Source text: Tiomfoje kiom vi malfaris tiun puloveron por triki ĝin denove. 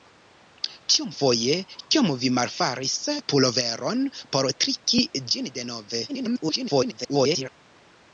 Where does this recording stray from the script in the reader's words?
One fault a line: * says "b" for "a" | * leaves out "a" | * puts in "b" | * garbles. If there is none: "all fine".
* leaves out "tiun"
* garbles